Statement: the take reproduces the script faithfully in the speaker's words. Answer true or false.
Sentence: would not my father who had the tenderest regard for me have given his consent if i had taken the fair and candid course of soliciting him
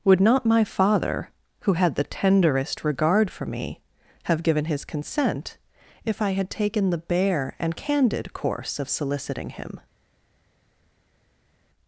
false